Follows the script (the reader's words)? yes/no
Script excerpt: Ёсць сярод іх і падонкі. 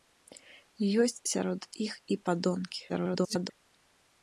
no